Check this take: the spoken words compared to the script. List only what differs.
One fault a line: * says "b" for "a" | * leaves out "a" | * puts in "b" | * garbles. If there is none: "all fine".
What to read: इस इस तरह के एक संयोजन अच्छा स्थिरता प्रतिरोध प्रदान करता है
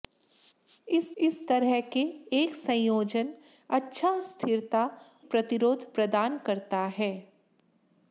all fine